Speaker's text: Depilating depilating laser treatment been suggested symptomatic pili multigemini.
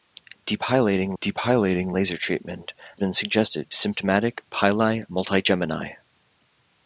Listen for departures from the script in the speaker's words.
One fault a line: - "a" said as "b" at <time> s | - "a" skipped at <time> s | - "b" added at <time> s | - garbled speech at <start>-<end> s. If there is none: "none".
none